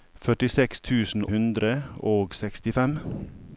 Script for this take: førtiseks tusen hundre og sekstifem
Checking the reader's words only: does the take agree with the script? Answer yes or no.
yes